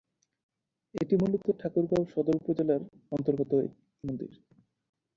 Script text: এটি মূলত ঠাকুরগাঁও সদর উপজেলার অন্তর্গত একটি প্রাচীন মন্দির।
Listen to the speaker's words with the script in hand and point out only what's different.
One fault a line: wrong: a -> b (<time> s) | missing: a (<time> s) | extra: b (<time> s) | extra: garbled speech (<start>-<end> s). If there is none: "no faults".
missing: একটি প্রাচীন (3.5 s)